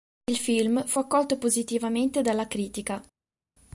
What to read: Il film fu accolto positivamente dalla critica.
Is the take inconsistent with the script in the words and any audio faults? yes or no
no